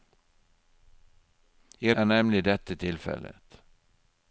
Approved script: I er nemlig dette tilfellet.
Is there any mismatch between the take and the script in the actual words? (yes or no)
no